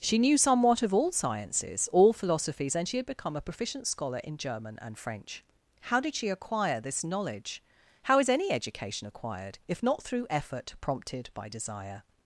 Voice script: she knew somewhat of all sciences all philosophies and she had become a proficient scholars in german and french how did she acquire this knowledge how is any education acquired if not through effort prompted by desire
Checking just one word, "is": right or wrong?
right